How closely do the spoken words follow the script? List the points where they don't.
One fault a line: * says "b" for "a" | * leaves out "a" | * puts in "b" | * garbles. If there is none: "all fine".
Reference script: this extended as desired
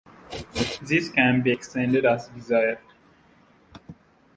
* puts in "can be"